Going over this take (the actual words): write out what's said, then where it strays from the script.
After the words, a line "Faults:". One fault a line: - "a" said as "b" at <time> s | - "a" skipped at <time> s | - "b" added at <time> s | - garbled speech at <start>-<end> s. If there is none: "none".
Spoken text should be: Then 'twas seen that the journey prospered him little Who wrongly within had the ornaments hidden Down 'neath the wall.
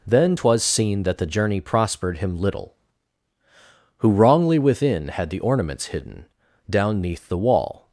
Then 'twas seen that the journey prospered him little Who wrongly within had the ornaments hidden Down 'neath the wall.
Faults:
none